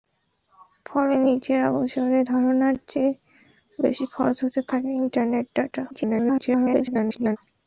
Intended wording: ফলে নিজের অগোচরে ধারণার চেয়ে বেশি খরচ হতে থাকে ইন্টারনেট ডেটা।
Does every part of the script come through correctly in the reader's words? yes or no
no